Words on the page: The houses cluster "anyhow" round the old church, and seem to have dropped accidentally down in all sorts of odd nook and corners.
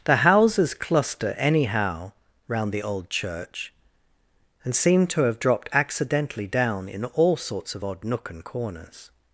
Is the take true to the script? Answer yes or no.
yes